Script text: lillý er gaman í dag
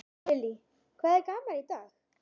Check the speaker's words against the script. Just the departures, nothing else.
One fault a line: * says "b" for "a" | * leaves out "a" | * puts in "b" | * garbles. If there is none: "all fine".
* puts in "hvað"